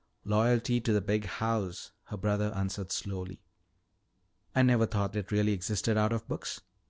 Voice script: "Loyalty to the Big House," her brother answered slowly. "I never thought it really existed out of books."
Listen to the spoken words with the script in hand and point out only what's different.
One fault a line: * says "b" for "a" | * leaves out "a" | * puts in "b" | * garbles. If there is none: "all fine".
all fine